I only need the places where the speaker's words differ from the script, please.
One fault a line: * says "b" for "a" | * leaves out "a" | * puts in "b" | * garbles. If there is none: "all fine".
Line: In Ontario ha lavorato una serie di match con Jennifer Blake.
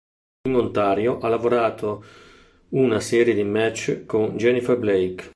all fine